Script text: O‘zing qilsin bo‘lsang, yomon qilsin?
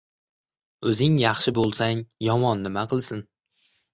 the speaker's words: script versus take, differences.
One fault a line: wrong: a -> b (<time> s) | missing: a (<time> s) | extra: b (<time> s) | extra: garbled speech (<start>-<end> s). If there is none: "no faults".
wrong: qilsin -> yaxshi (1.2 s)
extra: nima (2.7 s)